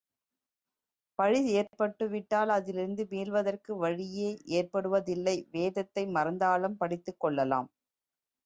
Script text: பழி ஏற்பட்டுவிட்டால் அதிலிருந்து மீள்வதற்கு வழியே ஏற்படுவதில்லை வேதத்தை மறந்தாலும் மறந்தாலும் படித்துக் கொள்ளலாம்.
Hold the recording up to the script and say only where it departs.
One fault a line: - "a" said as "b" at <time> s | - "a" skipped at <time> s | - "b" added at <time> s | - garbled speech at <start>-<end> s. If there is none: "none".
- "மறந்தாலும்" skipped at 6.8 s